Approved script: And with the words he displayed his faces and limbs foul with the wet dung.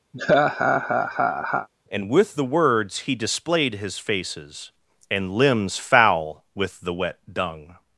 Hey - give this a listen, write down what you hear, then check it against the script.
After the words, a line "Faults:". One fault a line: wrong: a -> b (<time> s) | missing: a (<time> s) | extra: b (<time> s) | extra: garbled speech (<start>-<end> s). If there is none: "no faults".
And with the words he displayed his faces and limbs foul with the wet dung.
Faults:
no faults